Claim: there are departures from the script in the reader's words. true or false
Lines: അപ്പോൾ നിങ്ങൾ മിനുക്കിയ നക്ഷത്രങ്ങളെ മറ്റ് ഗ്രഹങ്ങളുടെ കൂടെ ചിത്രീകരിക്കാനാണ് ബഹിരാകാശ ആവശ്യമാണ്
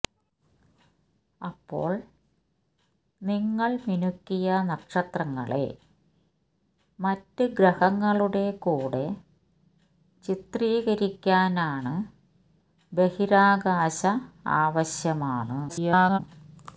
true